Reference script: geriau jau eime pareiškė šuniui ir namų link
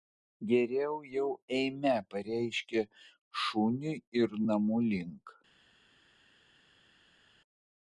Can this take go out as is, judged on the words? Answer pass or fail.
pass